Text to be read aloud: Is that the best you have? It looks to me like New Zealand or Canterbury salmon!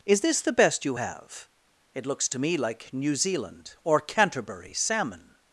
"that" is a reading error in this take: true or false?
true